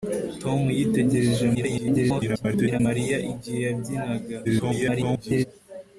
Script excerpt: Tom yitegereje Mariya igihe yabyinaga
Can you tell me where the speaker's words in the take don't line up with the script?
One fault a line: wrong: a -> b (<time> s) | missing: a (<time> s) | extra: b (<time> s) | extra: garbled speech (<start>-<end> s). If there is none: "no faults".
extra: garbled speech (1.5-2.8 s)
extra: garbled speech (4.4-5.5 s)